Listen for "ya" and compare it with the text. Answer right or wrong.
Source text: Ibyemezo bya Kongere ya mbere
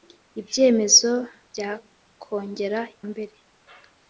wrong